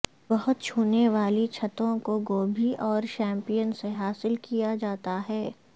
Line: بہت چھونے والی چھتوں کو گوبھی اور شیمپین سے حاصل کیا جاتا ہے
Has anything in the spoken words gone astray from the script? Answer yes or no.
no